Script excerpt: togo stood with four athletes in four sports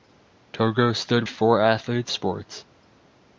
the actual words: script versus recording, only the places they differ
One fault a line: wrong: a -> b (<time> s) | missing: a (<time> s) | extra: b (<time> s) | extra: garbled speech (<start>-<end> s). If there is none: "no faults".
missing: with (1.2 s)
missing: in four (2.1 s)